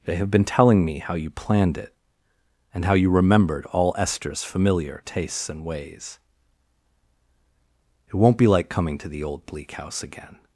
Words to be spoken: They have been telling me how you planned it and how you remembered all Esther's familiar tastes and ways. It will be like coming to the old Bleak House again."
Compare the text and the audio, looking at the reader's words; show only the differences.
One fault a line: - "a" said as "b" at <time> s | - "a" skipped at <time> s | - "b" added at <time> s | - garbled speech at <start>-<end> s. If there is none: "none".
- "will" said as "won't" at 8.2 s